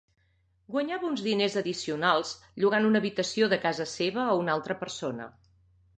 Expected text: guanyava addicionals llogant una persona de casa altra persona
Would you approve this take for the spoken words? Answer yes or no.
no